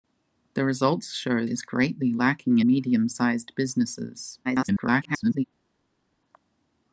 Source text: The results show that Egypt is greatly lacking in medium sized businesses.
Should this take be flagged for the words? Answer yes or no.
yes